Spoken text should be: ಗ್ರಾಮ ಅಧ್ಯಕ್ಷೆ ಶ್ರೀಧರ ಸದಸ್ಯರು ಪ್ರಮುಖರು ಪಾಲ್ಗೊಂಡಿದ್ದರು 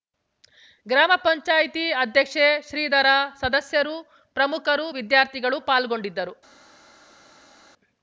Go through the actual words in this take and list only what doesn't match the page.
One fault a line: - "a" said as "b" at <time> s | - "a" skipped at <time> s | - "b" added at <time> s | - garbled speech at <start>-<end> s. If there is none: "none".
- "ಪಂಚಾಯತಿ" added at 1.2 s
- "ವಿದ್ಯಾರ್ಥಿಗಳು" added at 4.9 s